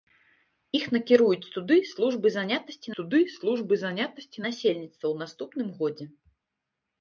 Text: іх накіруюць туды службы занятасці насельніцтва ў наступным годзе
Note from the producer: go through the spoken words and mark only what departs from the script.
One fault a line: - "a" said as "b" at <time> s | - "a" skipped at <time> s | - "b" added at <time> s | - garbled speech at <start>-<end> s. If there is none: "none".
- "туды службы занятасці" added at 3.0 s